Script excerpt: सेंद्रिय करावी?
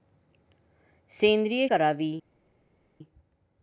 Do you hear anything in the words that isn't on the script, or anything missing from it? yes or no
no